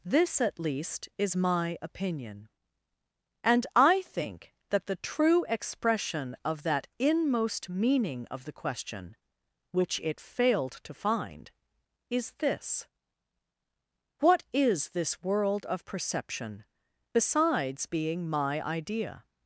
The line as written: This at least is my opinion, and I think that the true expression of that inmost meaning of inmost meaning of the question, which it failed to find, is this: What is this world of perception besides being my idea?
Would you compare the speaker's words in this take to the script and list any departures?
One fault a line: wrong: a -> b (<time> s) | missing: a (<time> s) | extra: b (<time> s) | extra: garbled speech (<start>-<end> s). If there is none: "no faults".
missing: inmost meaning of (8.5 s)